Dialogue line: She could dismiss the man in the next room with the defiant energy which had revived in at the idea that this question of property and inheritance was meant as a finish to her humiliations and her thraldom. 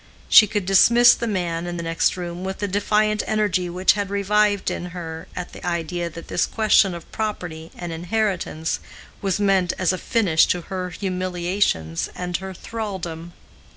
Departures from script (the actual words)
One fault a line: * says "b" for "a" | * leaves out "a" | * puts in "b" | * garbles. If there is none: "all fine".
* puts in "her"